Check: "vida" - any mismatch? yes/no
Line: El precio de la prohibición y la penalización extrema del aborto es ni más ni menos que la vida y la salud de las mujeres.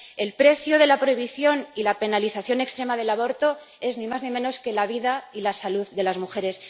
no